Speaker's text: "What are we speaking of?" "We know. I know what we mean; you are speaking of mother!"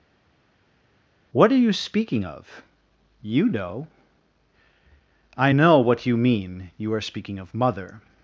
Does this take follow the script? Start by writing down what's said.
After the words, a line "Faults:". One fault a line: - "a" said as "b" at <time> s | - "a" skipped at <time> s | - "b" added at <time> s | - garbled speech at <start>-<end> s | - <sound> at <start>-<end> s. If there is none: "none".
"What are you speaking of?" "You know. I know what you mean; you are speaking of mother!"
Faults:
- "we" said as "you" at 1.6 s
- "We" said as "You" at 3.2 s
- "we" said as "you" at 6.0 s